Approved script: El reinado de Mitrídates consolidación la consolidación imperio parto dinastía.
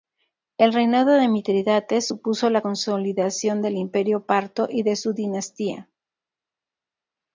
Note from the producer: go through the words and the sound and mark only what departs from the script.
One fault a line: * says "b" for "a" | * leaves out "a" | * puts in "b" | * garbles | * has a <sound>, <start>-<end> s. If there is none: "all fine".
* says "supuso" for "consolidación"
* puts in "del"
* puts in "y de su"